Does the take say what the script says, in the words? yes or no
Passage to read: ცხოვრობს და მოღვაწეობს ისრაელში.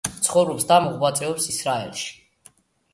yes